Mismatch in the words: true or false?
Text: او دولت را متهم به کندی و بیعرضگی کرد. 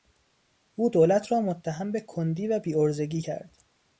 false